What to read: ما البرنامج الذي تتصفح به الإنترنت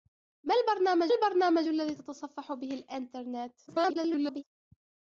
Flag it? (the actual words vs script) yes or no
yes